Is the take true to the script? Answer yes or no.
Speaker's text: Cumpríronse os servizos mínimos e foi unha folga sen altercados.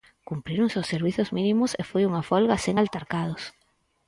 yes